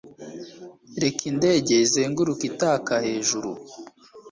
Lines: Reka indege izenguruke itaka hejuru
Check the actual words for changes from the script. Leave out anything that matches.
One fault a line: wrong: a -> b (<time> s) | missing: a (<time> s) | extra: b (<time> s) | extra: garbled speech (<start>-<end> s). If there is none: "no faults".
no faults